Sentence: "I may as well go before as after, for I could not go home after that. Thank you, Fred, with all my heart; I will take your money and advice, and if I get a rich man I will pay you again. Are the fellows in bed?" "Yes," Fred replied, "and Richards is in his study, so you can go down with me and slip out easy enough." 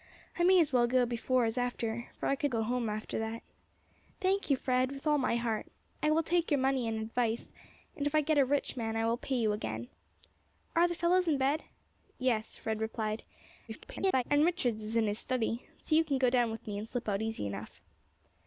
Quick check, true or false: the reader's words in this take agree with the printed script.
false